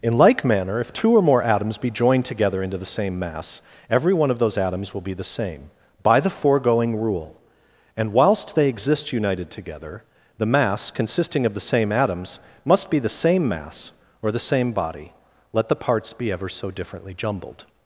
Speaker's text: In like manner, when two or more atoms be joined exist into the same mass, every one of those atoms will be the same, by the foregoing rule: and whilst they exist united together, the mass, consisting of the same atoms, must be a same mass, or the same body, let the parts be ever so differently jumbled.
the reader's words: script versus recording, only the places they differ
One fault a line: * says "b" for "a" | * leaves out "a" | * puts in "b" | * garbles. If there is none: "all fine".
* says "if" for "when"
* says "together" for "exist"
* says "the" for "a"